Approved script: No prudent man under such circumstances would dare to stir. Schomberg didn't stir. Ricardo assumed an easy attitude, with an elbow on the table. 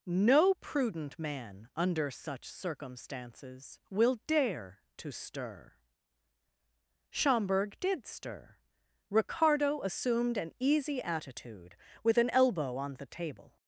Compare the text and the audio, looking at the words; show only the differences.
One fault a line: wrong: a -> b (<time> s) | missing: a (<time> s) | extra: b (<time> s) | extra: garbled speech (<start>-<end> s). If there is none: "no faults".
wrong: would -> will (3.9 s)
wrong: didn't -> did (7.8 s)